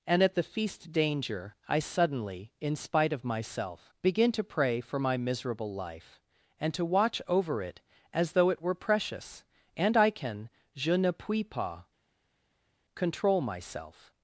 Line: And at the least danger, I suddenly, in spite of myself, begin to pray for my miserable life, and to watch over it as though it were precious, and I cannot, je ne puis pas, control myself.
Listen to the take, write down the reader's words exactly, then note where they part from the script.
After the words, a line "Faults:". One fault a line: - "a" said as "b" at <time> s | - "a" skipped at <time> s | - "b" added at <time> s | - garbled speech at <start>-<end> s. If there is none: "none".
And at the feast danger, I suddenly, in spite of myself, begin to pray for my miserable life, and to watch over it as though it were precious, and I can, je ne puis pas, control myself.
Faults:
- "least" said as "feast" at 0.4 s
- "cannot" said as "can" at 10.1 s